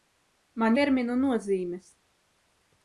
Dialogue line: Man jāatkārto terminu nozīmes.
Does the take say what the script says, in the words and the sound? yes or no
no